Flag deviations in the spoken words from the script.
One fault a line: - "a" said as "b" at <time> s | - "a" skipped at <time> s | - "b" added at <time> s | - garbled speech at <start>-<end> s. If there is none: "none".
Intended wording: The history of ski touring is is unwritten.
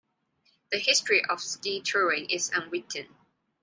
- "is" skipped at 2.5 s